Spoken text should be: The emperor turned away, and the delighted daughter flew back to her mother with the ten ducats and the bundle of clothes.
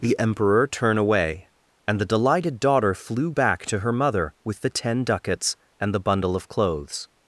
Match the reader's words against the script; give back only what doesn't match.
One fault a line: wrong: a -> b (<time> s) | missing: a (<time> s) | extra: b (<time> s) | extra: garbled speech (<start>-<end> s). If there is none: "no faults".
wrong: turned -> turn (0.7 s)